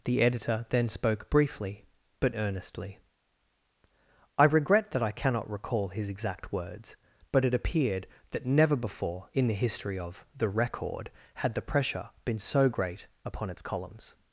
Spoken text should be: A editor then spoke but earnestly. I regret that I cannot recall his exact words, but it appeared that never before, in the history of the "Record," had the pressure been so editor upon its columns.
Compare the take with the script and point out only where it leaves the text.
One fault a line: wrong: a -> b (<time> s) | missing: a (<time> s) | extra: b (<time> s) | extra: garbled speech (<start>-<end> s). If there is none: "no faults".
wrong: A -> The (0.0 s)
extra: briefly (1.3 s)
wrong: editor -> great (12.7 s)